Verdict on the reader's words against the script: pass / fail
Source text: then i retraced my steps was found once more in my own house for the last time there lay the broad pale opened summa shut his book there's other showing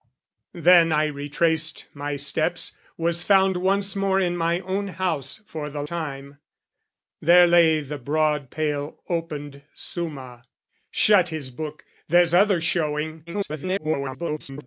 fail